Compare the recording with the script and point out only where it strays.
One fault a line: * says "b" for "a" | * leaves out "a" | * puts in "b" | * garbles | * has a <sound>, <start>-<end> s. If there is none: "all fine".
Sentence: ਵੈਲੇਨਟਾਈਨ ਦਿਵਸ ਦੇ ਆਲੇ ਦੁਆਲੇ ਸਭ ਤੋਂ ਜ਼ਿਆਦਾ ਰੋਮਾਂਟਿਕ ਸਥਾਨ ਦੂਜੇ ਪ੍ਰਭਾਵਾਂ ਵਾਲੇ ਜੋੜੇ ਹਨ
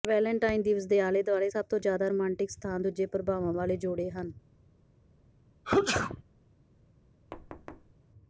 * has a sneeze, 5.6-6.2 s
* has a thud, 7.3-7.9 s